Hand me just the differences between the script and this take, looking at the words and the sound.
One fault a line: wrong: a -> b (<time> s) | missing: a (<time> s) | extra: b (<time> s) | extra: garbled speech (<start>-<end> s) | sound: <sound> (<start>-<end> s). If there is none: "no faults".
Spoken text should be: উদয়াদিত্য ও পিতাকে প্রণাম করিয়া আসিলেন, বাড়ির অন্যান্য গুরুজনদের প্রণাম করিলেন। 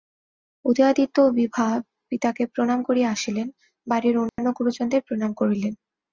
extra: বিভা (1.4 s)
sound: dropout (4.3-4.4 s)